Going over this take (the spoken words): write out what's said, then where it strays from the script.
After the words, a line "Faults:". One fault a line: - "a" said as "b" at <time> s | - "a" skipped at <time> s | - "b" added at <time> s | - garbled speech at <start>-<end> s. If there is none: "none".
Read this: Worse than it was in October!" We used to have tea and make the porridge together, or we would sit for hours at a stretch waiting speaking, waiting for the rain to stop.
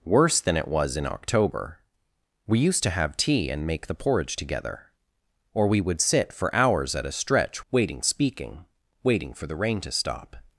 Worse than it was in October!" We used to have tea and make the porridge together, or we would sit for hours at a stretch waiting speaking, waiting for the rain to stop.
Faults:
none